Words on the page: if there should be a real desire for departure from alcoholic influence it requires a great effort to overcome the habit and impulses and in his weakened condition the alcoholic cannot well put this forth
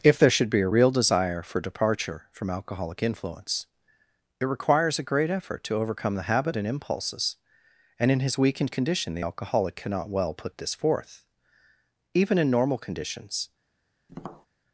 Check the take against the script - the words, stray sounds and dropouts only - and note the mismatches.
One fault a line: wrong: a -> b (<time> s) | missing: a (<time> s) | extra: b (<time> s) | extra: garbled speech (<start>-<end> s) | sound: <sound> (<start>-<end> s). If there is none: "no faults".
extra: even in normal conditions (12.1 s)
sound: tap (14.1-14.5 s)